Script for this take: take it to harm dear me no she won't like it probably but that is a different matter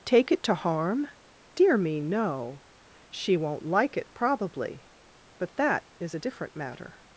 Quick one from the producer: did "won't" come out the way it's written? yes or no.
yes